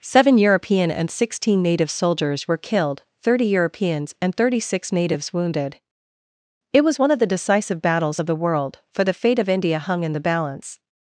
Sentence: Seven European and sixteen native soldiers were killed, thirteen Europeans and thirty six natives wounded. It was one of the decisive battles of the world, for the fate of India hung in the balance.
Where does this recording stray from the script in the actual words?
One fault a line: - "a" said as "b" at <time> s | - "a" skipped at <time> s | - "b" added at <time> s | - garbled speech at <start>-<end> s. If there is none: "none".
- "thirteen" said as "thirty" at 3.2 s